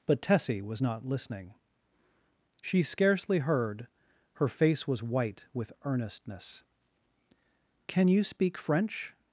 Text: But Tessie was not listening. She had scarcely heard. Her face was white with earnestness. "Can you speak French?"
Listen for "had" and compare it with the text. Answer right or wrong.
wrong